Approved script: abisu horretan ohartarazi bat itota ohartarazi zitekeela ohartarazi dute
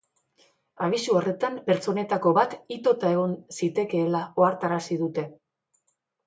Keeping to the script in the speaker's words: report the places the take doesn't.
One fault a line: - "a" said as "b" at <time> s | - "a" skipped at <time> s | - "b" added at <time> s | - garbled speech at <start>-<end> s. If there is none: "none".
- "ohartarazi" said as "pertsonetako" at 1.7 s
- "ohartarazi" said as "egon" at 3.2 s